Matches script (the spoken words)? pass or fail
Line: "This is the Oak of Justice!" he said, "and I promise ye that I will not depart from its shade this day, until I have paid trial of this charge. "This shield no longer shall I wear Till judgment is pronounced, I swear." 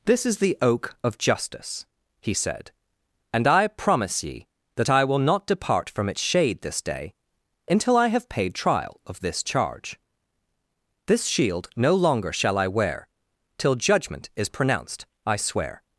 pass